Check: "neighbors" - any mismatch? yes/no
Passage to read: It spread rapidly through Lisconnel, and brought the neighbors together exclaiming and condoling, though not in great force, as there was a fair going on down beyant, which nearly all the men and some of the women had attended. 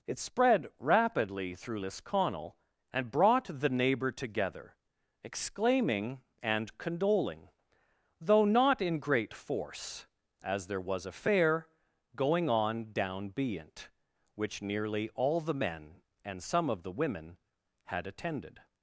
yes